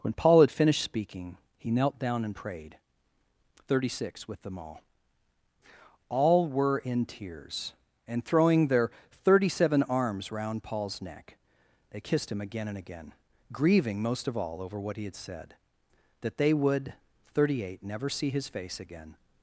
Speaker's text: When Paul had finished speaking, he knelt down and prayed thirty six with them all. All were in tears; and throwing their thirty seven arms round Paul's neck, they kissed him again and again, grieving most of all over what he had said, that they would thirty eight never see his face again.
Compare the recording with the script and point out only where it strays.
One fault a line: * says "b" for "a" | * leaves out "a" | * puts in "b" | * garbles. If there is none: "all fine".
all fine